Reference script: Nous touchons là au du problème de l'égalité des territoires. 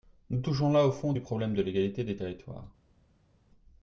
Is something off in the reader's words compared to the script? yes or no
yes